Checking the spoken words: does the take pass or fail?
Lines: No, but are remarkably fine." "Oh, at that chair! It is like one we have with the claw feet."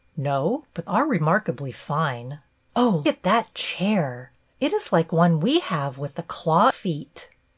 pass